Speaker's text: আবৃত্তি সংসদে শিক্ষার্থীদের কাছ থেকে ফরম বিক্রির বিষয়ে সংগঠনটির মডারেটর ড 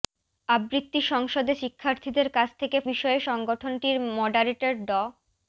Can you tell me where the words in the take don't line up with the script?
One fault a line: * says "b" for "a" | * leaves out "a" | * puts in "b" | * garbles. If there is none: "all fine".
* leaves out "ফরম বিক্রির"